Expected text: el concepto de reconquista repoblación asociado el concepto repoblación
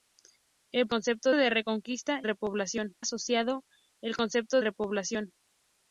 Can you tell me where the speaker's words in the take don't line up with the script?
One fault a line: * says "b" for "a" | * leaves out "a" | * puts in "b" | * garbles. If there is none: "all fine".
all fine